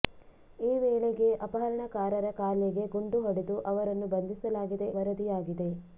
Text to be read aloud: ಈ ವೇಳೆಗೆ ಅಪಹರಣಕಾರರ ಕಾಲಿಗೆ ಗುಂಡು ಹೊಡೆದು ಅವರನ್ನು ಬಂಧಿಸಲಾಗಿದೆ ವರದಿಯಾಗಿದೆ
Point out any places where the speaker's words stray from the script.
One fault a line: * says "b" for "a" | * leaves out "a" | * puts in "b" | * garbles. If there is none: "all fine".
all fine